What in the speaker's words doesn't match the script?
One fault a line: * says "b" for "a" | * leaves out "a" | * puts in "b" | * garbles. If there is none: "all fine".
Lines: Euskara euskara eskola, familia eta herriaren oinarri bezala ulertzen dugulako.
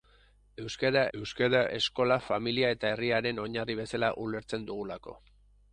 all fine